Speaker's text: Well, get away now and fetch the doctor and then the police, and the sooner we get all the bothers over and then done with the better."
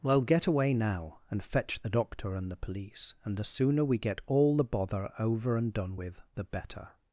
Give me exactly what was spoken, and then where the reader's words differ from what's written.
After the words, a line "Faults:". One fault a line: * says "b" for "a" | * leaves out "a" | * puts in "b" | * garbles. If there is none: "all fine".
Well, get away now and fetch the doctor and the police, and the sooner we get all the bother over and done with the better."
Faults:
* leaves out "then"
* says "bother" for "bothers"
* leaves out "then"